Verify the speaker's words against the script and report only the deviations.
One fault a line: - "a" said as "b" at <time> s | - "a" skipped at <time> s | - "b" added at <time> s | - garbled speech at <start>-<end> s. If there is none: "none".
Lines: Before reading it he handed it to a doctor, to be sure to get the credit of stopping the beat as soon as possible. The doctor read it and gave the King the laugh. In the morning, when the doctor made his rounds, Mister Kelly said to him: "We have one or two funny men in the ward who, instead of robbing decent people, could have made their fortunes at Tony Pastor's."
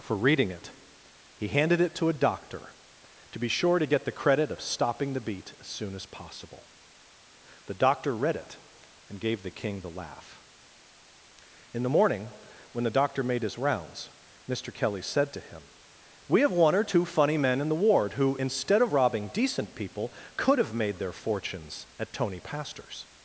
- "Before" said as "For" at 0.0 s